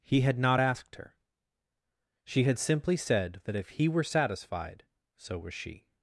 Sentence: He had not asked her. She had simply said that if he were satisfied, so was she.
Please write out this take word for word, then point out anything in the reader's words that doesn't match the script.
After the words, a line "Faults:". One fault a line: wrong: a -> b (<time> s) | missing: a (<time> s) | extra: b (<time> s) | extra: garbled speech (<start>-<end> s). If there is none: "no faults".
He had not asked her. She had simply said that if he were satisfied, so was she.
Faults:
no faults